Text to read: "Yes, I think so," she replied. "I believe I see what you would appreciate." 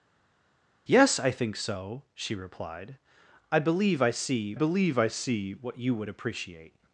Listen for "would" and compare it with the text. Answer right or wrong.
right